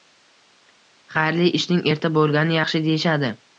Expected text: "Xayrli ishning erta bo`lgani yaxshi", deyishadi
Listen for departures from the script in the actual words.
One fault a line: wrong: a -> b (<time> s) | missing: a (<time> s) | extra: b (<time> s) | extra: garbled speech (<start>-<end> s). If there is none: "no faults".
no faults